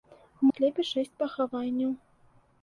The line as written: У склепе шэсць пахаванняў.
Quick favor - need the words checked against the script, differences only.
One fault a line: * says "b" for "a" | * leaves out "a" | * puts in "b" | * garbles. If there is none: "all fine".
all fine